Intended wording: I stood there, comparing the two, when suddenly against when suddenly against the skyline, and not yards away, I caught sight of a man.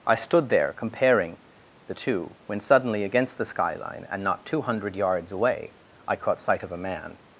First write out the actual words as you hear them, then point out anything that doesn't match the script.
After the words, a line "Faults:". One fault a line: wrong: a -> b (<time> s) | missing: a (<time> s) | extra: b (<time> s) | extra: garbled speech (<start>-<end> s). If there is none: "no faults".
I stood there, comparing the two, when suddenly against the skyline, and not two hundred yards away, I caught sight of a man.
Faults:
missing: when suddenly against (3.4 s)
extra: two hundred (4.5 s)